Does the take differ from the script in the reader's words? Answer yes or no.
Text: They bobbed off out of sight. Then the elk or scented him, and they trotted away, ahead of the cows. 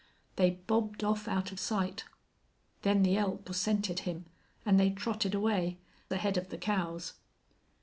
no